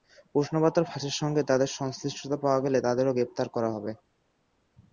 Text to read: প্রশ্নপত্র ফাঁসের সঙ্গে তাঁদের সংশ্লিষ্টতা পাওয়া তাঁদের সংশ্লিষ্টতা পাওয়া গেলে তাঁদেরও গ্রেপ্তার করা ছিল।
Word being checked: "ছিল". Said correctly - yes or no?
no